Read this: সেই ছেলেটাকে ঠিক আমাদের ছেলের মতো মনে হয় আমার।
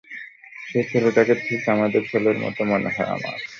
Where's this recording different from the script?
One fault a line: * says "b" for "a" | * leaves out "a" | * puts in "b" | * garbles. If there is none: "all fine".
all fine